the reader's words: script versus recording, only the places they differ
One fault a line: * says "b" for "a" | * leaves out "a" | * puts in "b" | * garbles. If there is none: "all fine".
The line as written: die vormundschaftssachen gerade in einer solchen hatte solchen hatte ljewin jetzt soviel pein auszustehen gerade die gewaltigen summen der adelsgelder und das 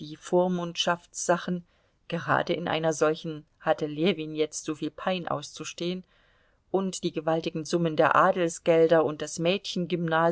* leaves out "solchen hatte"
* says "und" for "gerade"